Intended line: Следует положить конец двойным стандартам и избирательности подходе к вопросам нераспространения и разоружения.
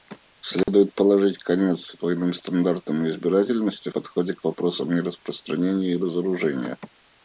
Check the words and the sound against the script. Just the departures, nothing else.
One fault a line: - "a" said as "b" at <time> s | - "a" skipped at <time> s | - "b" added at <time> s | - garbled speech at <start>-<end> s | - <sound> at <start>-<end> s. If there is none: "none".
- dropout at 0.6-0.7 s